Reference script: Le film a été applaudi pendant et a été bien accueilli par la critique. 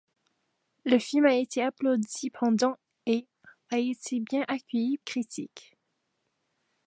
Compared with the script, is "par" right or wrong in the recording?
wrong